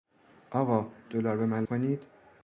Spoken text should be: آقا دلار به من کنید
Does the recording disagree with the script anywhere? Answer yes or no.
no